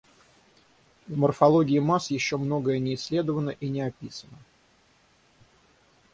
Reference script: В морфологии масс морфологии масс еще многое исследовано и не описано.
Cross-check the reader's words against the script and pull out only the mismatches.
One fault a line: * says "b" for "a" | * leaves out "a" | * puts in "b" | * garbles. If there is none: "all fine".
* leaves out "морфологии масс"
* puts in "не"